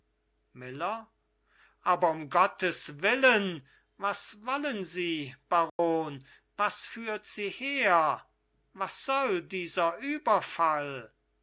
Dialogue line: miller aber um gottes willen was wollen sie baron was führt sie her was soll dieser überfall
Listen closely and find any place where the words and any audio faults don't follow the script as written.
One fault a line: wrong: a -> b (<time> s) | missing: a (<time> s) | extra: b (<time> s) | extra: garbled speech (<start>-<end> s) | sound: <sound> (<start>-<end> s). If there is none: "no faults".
sound: dropout (5.7-5.8 s)